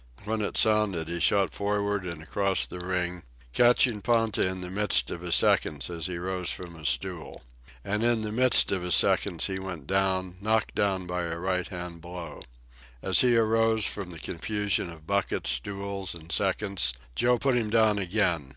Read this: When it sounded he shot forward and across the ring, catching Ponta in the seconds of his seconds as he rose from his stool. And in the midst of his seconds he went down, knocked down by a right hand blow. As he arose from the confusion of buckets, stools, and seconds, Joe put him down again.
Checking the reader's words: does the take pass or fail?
fail